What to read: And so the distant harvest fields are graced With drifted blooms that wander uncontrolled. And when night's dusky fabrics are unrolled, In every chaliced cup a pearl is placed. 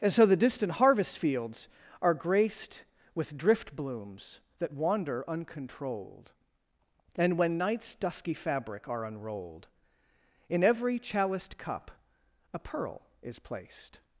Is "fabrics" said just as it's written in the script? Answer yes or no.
no